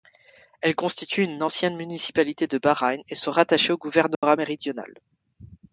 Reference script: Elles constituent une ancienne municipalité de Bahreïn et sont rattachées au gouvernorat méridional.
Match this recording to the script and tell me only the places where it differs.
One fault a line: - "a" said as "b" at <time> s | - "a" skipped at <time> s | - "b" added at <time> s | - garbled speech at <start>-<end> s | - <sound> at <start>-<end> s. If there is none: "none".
- dropout at 4.1-4.2 s